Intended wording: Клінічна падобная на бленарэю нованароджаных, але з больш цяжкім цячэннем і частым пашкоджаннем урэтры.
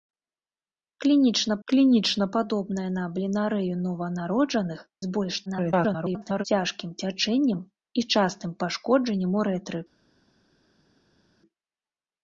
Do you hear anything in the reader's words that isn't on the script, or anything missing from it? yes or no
yes